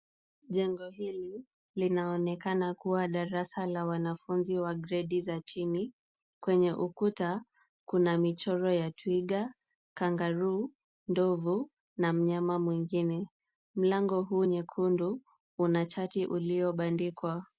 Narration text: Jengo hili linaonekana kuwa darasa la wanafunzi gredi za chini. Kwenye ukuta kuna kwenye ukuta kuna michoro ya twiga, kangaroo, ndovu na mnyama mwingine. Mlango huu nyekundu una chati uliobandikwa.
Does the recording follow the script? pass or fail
fail